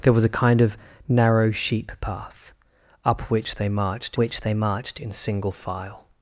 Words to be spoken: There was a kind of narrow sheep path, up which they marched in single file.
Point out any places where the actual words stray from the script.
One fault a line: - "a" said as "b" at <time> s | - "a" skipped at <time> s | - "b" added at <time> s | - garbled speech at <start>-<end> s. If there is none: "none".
- "which they marched" added at 4.2 s